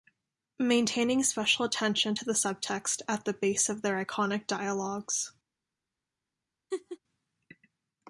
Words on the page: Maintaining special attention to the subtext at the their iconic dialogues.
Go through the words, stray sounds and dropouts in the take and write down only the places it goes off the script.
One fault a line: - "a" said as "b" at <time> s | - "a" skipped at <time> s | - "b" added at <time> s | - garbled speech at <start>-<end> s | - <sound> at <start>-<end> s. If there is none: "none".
- "base of" added at 3.3 s
- laugh at 6.7-7.0 s